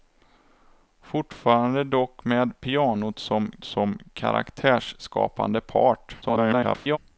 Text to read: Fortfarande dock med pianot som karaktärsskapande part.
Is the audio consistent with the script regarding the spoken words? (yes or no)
no